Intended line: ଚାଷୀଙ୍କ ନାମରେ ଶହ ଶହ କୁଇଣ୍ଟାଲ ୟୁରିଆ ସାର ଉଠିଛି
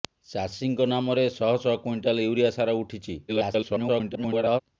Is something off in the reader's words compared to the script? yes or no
yes